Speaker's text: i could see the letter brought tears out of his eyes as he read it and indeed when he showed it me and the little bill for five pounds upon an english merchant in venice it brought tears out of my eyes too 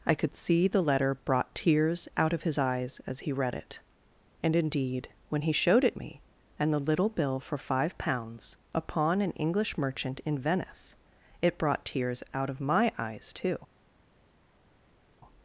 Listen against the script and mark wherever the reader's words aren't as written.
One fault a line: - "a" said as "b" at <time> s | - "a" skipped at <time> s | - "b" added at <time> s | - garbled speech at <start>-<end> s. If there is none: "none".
none